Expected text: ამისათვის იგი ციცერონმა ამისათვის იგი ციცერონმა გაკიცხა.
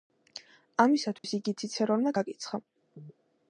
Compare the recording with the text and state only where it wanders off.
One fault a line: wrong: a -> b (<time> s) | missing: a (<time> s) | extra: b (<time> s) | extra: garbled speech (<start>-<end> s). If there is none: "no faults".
missing: ამისათვის იგი ციცერონმა (2.2 s)